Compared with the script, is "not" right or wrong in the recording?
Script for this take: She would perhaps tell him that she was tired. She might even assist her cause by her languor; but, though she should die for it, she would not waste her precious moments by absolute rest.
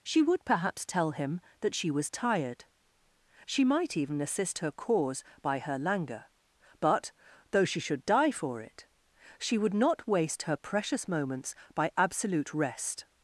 right